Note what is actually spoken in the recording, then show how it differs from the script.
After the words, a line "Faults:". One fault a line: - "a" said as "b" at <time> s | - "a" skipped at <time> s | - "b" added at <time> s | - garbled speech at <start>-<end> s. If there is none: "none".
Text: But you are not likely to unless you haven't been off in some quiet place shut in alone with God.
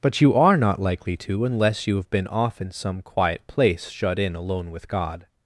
But you are not likely to unless you have been off in some quiet place shut in alone with God.
Faults:
- "haven't" said as "have" at 1.9 s